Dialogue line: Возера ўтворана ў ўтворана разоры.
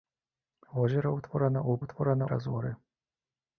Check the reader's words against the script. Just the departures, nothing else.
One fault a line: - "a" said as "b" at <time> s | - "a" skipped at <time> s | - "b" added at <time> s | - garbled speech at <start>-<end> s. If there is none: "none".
none